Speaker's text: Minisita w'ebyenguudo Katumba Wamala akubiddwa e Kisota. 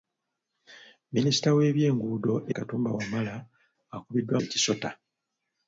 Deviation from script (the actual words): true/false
false